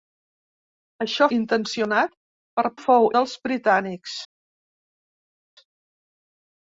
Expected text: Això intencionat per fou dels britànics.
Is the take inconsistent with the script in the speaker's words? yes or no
no